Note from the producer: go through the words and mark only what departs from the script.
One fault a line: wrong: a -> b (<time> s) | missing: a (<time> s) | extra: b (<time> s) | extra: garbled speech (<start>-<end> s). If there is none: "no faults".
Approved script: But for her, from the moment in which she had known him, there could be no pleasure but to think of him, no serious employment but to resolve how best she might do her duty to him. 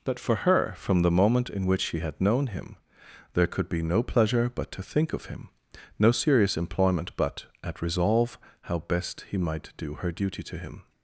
wrong: to -> at (7.6 s)
wrong: she -> he (9.3 s)